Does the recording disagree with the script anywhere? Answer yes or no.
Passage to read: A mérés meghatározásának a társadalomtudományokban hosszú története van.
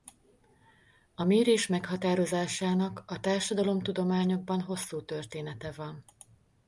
no